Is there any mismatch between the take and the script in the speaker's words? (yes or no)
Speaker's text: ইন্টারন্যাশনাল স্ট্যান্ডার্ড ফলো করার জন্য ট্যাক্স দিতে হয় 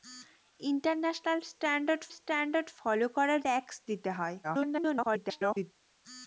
yes